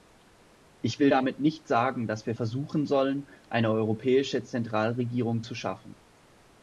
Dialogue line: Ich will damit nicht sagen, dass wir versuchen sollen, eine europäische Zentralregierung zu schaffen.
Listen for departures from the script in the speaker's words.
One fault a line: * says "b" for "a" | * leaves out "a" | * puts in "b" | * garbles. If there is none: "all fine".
all fine